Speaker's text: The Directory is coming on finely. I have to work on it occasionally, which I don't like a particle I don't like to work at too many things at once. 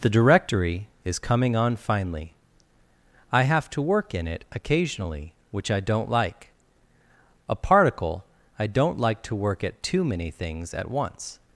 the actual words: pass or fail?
fail